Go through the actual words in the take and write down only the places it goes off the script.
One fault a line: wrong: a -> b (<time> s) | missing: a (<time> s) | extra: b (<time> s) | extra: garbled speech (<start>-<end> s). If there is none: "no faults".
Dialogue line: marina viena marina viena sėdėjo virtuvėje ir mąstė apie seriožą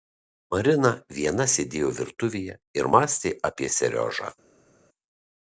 missing: marina viena (1.5 s)